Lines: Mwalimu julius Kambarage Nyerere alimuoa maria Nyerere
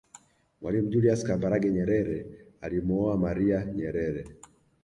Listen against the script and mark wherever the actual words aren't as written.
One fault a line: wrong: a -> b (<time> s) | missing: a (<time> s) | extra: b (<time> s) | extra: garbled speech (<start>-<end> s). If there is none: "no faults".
no faults